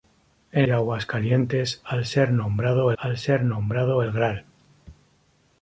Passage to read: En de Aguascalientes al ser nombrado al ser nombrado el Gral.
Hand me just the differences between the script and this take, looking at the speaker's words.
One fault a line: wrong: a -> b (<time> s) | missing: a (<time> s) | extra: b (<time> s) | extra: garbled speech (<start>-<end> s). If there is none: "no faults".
no faults